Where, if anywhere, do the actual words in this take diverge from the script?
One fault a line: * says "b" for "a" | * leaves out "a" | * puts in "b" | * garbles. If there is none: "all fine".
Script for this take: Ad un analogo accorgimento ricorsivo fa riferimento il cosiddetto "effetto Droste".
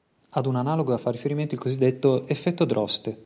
* leaves out "accorgimento ricorsivo"